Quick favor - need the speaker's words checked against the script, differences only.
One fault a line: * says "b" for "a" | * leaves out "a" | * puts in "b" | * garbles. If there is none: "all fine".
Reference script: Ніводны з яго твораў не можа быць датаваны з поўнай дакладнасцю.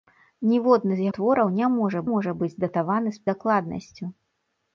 * leaves out "яго"
* puts in "можа"
* leaves out "поўнай"